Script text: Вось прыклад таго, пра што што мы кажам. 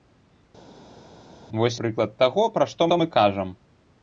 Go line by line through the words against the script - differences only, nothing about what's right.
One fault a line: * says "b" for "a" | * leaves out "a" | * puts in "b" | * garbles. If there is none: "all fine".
all fine